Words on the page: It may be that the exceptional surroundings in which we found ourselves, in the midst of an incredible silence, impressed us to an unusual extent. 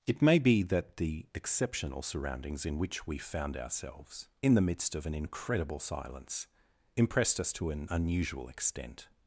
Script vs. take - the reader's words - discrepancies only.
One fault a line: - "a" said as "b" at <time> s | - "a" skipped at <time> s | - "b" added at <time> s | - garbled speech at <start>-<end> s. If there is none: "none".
none